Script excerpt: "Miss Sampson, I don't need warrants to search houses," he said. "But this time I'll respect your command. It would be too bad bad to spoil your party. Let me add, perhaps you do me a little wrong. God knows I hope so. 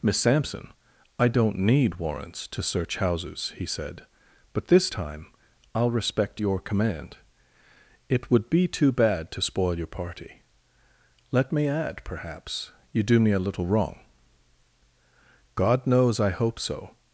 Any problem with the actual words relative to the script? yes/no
yes